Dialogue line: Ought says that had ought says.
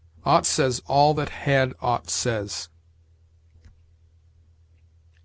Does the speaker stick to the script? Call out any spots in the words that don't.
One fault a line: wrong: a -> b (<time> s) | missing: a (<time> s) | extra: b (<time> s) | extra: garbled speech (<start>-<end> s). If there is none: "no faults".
extra: all (0.9 s)